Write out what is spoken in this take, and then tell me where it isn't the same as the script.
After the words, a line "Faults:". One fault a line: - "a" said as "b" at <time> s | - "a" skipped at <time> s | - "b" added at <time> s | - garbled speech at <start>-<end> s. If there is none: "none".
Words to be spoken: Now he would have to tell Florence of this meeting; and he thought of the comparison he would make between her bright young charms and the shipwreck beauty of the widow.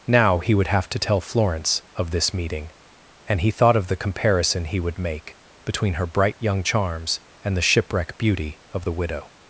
Now he would have to tell Florence of this meeting; and he thought of the comparison he would make between her bright young charms and the shipwreck beauty of the widow.
Faults:
none